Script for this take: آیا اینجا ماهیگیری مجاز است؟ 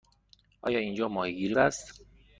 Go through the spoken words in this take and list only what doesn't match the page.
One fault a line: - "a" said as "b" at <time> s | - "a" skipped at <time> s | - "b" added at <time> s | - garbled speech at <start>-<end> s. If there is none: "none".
- "مجاز" skipped at 1.6 s